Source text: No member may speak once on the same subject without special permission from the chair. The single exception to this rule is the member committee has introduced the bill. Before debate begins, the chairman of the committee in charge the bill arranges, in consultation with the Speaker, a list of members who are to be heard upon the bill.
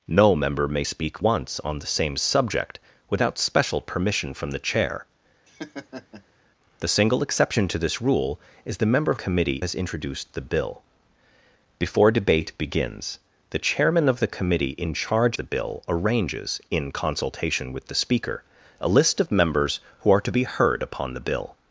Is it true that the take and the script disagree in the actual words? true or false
false